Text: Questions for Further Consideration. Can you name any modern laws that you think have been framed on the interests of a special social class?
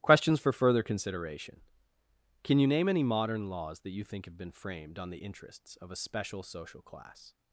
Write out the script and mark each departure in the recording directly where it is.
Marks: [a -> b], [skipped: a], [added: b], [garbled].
Questions for Further Consideration. Can you name any modern laws that you think have been framed on the interests of a special social class?